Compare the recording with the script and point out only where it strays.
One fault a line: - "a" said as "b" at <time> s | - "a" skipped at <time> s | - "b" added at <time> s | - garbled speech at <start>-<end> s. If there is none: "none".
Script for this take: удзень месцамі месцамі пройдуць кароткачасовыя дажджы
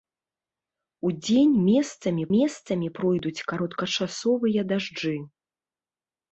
none